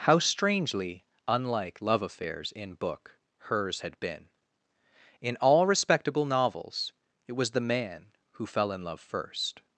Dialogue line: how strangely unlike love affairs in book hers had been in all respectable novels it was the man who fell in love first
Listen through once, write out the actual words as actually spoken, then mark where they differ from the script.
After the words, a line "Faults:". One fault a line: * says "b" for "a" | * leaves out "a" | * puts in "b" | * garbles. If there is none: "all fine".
how strangely unlike love affairs in book hers had been in all respectable novels it was the man who fell in love first
Faults:
all fine